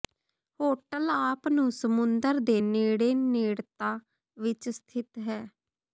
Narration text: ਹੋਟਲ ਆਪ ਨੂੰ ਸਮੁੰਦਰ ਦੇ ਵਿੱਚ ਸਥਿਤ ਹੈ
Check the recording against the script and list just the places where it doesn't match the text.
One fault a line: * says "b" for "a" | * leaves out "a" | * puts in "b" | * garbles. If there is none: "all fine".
* puts in "ਨੇੜੇ ਨੇੜਤਾ"